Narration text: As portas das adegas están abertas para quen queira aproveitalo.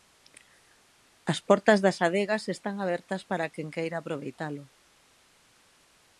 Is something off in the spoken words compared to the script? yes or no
no